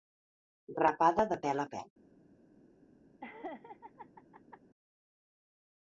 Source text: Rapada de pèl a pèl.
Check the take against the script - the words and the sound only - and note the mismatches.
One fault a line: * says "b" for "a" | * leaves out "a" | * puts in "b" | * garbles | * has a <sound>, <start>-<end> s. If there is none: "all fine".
* has a laugh, 3.2-4.6 s